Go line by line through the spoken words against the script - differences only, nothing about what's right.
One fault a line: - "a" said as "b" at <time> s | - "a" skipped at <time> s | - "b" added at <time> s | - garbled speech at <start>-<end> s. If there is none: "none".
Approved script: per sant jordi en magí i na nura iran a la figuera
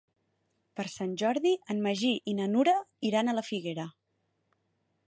none